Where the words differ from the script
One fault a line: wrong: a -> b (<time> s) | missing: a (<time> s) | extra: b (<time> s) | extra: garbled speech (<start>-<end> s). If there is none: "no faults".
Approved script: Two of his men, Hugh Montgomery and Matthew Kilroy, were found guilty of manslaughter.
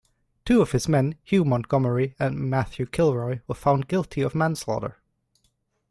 no faults